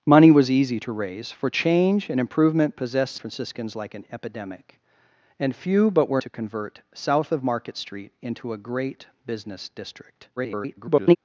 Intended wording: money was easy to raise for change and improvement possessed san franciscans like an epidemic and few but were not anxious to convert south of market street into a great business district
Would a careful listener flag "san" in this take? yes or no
yes